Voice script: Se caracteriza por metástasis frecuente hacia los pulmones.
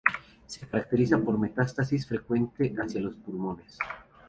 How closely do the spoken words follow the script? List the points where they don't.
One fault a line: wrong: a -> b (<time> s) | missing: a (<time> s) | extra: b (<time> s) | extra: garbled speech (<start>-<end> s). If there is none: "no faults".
no faults